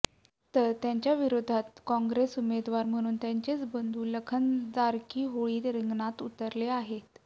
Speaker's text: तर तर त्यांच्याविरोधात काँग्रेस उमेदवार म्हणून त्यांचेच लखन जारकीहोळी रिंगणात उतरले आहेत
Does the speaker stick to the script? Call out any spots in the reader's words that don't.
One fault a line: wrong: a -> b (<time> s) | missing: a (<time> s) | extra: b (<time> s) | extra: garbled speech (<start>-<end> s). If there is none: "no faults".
missing: तर (0.7 s)
extra: बंधू (3.7 s)